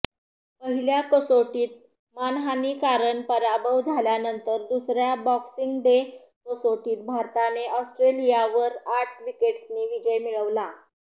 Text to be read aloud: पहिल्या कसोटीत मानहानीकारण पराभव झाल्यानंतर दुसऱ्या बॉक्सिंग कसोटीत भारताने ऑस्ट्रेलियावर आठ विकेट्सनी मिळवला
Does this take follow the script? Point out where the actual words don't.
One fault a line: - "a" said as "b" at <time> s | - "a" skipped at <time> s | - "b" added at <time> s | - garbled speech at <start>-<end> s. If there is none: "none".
- "डे" added at 5.8 s
- "विजय" added at 9.9 s